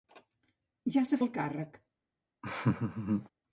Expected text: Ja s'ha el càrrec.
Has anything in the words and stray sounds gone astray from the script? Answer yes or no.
yes